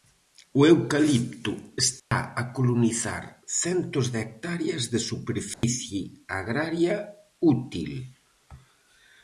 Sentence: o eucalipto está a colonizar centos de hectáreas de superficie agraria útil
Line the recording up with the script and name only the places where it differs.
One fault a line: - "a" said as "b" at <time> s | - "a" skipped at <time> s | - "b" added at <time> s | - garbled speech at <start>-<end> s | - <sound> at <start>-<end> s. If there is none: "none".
- dropout at 2.0-2.1 s
- dropout at 5.5-5.6 s